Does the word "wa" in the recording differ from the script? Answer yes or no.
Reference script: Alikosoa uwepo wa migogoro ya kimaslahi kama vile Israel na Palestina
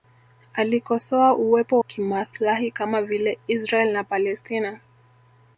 yes